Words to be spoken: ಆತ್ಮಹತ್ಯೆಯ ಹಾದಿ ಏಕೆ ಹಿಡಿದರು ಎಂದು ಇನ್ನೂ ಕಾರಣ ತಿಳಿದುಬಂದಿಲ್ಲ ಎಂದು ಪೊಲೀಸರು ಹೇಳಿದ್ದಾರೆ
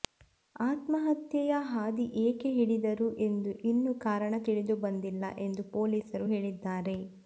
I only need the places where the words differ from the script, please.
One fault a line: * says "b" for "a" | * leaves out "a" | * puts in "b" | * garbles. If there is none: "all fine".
all fine